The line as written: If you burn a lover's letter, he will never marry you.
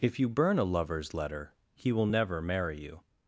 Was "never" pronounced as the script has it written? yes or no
yes